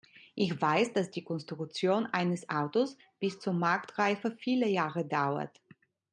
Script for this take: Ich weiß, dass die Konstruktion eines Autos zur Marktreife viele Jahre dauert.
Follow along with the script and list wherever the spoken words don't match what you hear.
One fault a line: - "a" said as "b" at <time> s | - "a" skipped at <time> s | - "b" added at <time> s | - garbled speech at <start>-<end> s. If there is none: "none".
- "bis" added at 3.2 s